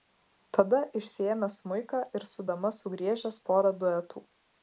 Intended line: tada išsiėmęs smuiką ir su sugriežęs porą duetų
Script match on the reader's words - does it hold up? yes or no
no